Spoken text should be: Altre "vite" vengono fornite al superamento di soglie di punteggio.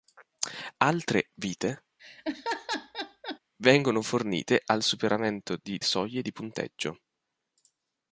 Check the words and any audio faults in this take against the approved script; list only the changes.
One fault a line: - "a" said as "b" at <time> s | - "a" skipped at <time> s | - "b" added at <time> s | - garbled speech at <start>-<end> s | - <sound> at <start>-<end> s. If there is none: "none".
- laugh at 2.0-3.4 s